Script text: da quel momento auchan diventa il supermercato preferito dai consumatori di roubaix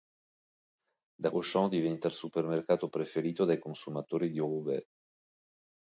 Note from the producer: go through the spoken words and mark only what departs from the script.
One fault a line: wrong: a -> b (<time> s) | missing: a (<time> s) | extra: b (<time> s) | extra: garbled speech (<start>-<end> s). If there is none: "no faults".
missing: quel momento (1.3 s)